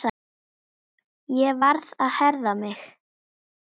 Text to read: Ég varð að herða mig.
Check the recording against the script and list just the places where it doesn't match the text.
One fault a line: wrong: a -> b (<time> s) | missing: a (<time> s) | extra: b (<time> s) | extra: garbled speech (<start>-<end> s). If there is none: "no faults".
no faults